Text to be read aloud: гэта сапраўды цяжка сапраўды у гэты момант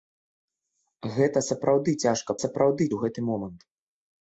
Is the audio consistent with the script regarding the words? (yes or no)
yes